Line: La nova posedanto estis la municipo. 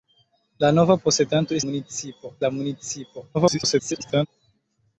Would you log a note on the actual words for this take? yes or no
yes